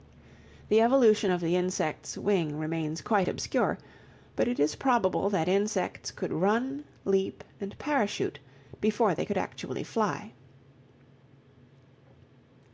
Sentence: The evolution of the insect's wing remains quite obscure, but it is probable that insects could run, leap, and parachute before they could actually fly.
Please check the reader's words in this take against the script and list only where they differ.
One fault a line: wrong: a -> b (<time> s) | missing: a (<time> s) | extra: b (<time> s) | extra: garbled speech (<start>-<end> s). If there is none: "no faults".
no faults